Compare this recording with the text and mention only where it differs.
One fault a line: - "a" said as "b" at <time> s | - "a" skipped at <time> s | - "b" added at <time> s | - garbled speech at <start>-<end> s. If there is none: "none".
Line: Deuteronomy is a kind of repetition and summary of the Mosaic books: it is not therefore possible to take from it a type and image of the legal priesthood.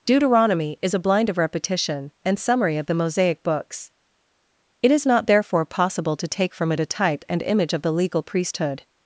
- "kind" said as "blind" at 1.0 s